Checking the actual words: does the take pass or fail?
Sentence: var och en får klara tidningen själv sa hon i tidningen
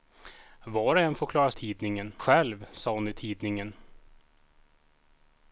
pass